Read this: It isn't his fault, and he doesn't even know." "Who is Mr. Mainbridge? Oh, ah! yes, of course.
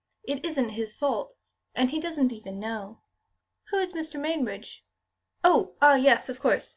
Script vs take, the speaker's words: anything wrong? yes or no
no